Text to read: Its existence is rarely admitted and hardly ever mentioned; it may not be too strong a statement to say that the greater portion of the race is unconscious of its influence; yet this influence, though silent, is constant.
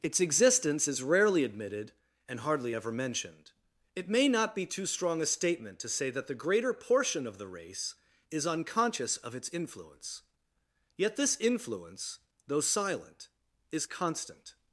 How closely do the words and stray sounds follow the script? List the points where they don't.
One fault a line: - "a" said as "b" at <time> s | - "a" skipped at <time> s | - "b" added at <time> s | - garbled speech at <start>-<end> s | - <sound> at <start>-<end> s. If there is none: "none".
none